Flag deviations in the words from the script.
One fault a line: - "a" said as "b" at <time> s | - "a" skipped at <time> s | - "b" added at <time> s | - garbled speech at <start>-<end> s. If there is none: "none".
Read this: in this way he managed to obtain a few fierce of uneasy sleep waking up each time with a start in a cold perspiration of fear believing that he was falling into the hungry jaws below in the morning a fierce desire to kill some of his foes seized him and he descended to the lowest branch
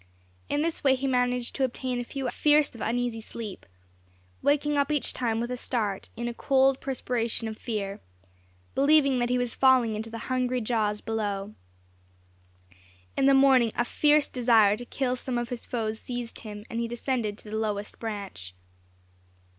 none